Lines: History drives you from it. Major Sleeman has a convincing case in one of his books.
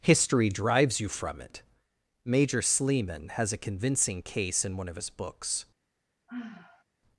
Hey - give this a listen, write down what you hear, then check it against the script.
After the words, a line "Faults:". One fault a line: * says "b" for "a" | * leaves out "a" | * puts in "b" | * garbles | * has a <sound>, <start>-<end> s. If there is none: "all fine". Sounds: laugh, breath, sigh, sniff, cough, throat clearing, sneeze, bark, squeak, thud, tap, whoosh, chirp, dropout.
History drives you from it. Major Sleeman has a convincing case in one of his books.
Faults:
* has a sigh, 6.3-6.8 s